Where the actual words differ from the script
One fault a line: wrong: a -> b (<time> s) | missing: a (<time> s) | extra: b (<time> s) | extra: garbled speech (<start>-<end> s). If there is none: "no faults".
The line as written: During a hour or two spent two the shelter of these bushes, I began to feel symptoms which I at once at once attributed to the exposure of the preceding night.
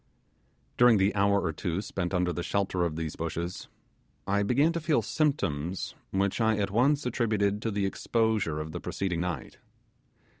wrong: a -> the (1.0 s)
wrong: two -> under (2.1 s)
missing: at once (7.1 s)